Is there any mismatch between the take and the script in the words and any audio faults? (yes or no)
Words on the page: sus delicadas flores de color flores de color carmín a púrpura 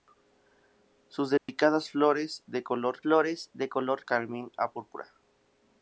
yes